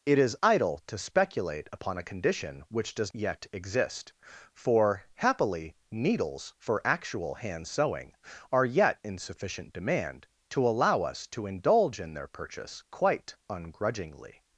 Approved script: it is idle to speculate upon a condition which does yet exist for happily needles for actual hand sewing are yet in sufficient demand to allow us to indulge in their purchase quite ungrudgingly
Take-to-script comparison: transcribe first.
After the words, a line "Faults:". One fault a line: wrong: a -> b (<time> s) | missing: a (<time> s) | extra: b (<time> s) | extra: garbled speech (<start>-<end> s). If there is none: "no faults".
it is idle to speculate upon a condition which does yet exist for happily needles for actual hand sewing are yet in sufficient demand to allow us to indulge in their purchase quite ungrudgingly
Faults:
no faults